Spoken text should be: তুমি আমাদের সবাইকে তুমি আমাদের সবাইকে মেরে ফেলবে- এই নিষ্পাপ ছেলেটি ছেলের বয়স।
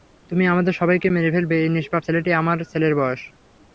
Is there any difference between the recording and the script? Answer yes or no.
yes